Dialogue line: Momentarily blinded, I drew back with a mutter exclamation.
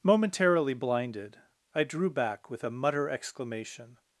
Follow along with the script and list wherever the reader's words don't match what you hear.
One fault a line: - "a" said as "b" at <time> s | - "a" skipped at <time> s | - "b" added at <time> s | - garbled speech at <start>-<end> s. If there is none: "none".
none